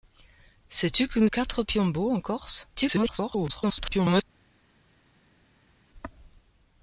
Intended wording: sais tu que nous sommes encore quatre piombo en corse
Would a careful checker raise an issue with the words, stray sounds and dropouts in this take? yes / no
yes